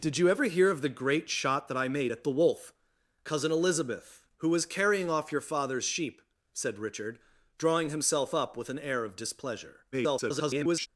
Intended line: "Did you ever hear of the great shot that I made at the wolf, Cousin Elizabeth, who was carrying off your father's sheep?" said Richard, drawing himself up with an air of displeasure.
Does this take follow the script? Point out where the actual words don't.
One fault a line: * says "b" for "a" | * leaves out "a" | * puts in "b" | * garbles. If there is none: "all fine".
* garbles